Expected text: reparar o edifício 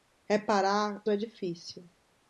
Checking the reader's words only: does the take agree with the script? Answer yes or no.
yes